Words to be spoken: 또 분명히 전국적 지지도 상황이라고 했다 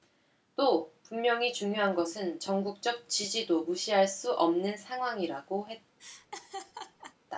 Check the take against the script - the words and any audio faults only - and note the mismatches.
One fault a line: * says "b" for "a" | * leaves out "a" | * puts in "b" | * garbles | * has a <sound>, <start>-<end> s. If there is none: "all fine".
* puts in "중요한 것은"
* puts in "무시할 수 없는"
* has a laugh, 6.0-7.2 s